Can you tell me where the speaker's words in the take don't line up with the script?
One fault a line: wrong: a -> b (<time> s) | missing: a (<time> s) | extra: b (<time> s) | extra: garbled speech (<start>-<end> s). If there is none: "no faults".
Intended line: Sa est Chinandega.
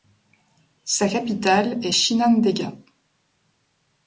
extra: capitale (1.1 s)